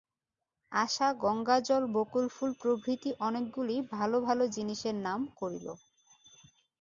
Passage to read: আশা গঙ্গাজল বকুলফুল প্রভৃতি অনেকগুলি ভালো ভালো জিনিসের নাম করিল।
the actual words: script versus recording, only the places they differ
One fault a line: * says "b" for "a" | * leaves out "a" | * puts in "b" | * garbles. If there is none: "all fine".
all fine